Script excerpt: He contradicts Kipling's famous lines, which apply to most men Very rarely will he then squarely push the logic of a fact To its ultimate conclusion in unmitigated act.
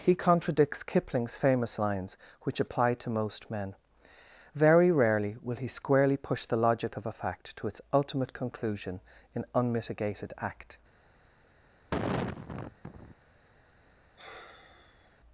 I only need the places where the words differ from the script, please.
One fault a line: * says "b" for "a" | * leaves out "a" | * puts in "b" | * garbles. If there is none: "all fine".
* leaves out "then"